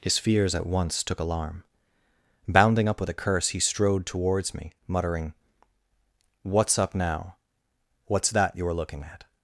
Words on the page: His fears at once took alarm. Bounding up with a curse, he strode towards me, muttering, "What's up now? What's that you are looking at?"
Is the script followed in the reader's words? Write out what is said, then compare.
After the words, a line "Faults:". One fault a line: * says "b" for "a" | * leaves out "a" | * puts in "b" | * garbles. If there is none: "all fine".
His fears at once took alarm. Bounding up with a curse, he strode towards me, muttering, "What's up now? What's that you are looking at?"
Faults:
all fine